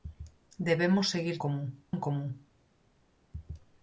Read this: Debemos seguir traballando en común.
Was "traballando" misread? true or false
true